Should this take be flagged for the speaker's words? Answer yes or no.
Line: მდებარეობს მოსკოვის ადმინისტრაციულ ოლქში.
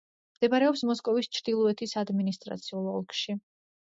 yes